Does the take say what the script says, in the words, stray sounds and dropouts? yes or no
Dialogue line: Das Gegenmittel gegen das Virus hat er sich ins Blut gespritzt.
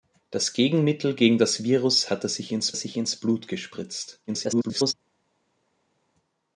no